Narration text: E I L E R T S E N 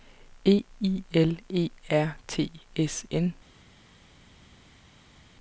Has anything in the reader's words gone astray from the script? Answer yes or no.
yes